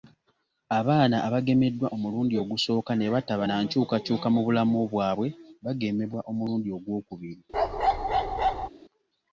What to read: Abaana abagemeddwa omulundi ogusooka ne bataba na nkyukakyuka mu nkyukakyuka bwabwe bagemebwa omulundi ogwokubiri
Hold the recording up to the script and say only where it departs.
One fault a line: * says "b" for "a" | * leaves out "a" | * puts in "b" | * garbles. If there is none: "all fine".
* says "bulamu" for "nkyukakyuka"